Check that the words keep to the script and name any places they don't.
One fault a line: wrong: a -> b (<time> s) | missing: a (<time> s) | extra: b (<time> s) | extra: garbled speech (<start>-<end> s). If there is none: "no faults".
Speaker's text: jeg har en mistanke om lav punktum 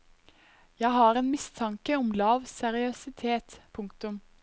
extra: seriøsitet (2.4 s)